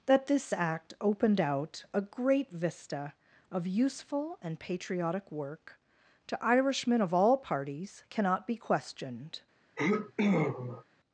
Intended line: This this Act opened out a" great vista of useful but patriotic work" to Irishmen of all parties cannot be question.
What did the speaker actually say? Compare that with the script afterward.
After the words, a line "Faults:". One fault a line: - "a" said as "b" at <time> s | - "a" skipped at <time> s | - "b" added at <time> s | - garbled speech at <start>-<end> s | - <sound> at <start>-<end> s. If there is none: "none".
That this Act opened out a" great vista of useful and patriotic work" to Irishmen of all parties cannot be questioned.
Faults:
- "This" said as "That" at 0.1 s
- "but" said as "and" at 4.4 s
- "question" said as "questioned" at 8.6 s
- sneeze at 9.8-10.8 s